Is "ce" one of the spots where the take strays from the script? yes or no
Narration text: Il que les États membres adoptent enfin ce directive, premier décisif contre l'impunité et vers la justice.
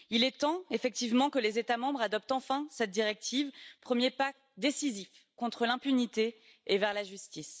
yes